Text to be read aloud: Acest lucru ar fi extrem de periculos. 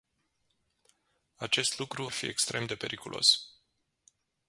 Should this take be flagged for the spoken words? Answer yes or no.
yes